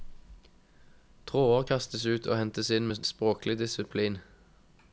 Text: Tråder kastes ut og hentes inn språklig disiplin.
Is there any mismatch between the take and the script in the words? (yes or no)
yes